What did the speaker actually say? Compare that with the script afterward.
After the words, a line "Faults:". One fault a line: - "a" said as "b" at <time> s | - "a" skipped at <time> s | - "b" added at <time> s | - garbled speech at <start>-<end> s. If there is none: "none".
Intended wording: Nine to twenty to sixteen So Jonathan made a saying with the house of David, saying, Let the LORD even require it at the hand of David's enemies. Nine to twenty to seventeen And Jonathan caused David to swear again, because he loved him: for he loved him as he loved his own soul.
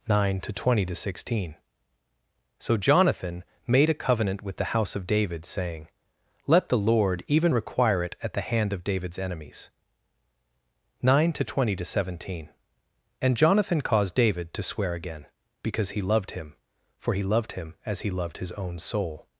Nine to twenty to sixteen So Jonathan made a covenant with the house of David, saying, Let the LORD even require it at the hand of David's enemies. Nine to twenty to seventeen And Jonathan caused David to swear again, because he loved him: for he loved him as he loved his own soul.
Faults:
- "saying" said as "covenant" at 4.0 s